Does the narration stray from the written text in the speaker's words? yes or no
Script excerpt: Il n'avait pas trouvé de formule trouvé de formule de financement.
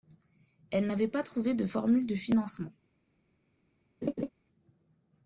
yes